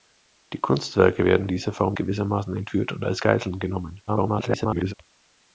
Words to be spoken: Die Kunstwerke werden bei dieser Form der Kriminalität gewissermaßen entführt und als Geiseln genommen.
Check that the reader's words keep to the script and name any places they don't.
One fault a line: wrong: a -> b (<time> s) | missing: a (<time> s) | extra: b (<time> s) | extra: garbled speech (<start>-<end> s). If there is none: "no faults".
missing: bei (1.5 s)
missing: der Kriminalität (2.0 s)
extra: garbled speech (4.1-4.9 s)